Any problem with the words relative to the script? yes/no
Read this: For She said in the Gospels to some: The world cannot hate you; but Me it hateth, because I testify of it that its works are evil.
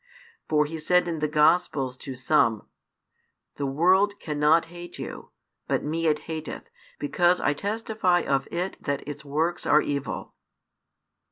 yes